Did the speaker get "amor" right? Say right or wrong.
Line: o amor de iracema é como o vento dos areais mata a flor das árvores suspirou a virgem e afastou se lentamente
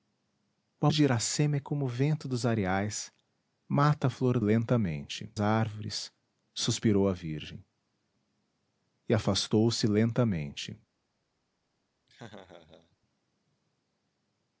wrong